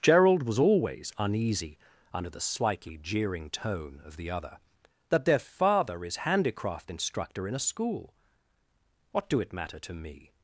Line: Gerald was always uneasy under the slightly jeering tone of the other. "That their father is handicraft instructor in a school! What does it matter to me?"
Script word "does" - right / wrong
wrong